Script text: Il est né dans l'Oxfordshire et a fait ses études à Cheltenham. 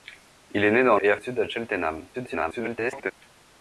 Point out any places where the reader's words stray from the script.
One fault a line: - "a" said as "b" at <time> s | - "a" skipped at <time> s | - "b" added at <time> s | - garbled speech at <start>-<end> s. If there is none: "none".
- "l'Oxfordshire" skipped at 1.0 s
- "fait ses" skipped at 1.2 s
- garbled speech at 2.1-3.1 s